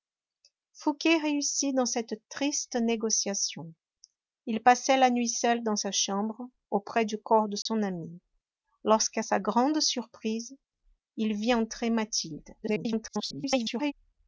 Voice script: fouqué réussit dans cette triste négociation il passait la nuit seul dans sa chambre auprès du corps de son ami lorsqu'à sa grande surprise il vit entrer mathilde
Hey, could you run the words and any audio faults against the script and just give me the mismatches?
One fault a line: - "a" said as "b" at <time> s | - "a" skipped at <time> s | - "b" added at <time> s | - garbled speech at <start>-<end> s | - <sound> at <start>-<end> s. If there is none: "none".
- dropout at 7.6-7.7 s
- garbled speech at 12.6-13.9 s